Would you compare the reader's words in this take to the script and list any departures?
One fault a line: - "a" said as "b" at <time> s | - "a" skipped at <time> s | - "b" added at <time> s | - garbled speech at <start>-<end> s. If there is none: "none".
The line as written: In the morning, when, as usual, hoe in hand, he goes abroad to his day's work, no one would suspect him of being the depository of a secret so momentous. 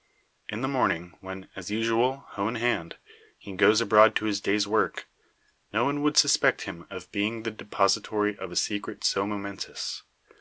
none